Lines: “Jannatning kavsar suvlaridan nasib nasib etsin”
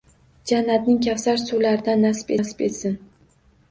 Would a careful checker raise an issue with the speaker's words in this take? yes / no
no